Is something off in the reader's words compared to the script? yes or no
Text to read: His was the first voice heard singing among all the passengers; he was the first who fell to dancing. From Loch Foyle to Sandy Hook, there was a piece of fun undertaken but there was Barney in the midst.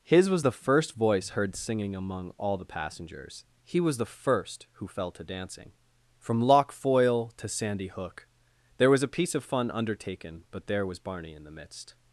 no